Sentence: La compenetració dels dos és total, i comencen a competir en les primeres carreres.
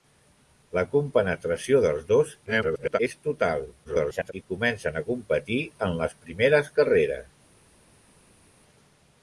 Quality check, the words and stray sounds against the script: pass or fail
fail